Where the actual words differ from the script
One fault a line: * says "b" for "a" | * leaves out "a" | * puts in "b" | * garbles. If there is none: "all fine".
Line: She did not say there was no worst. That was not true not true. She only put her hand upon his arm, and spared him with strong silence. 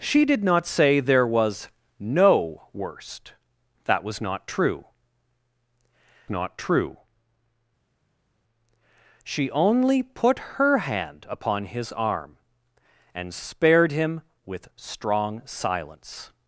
all fine